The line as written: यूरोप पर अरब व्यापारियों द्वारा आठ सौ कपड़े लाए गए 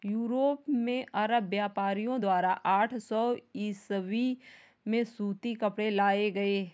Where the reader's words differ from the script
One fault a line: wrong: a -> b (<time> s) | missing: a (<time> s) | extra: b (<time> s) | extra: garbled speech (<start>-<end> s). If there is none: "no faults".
wrong: पर -> में (0.7 s)
extra: ईसवी में सूती (3.6 s)